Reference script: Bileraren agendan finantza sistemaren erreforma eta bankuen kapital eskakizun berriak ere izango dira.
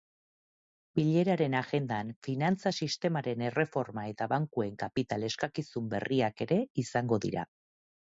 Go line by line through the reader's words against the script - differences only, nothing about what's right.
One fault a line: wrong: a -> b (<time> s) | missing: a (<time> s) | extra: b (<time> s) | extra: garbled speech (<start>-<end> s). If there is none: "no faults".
no faults